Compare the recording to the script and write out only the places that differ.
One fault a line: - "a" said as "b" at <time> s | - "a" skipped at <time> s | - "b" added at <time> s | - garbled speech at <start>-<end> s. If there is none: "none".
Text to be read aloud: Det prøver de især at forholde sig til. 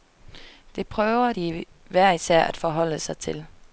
- "hver" added at 1.9 s